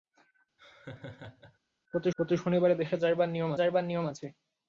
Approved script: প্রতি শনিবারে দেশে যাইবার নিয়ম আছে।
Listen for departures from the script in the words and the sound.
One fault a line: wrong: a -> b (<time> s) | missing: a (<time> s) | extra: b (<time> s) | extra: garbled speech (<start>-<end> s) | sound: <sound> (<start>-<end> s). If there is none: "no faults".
sound: laugh (0.6-1.6 s)
extra: প্রতি (2.2 s)
extra: যাইবার নিয়ম (3.5 s)